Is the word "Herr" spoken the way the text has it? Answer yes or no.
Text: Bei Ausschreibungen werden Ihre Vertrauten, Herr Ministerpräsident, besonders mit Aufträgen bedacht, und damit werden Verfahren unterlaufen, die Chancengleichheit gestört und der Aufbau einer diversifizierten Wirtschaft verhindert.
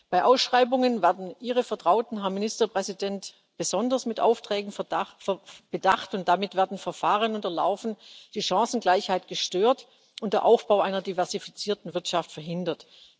yes